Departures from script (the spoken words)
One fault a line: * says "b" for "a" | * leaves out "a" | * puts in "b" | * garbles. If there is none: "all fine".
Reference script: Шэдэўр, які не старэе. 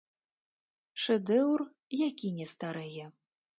all fine